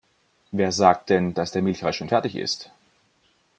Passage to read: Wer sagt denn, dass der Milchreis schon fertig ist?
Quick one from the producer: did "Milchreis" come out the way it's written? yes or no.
yes